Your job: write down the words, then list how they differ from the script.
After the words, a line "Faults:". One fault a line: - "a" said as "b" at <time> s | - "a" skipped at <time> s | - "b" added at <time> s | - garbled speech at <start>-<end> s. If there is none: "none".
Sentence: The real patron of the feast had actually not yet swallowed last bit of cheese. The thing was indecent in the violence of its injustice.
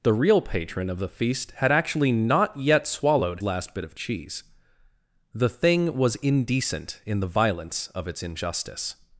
The real patron of the feast had actually not yet swallowed last bit of cheese. The thing was indecent in the violence of its injustice.
Faults:
none